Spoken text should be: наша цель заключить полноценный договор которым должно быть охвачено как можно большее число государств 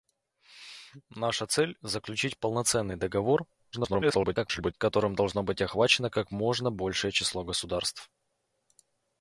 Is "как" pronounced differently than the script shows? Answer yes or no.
no